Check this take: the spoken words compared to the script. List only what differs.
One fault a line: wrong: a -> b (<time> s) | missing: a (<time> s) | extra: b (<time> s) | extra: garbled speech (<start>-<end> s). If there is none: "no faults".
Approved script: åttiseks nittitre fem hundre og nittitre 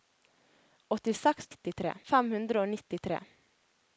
no faults